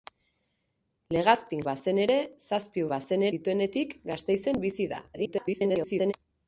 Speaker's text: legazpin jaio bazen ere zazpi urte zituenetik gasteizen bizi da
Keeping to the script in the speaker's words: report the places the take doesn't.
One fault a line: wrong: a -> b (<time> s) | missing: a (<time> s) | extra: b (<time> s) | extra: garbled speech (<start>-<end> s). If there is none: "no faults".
missing: jaio (1.6 s)
wrong: urte -> bazen (2.9 s)
extra: garbled speech (5.1-6.1 s)